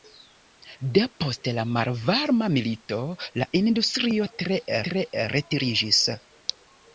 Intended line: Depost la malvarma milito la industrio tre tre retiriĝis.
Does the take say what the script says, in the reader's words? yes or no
yes